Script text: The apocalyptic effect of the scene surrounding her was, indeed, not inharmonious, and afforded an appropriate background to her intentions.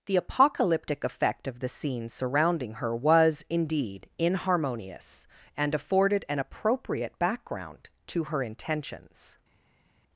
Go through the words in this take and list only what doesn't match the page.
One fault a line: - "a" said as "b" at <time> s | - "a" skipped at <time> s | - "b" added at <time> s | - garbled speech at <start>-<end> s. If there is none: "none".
- "not" skipped at 4.1 s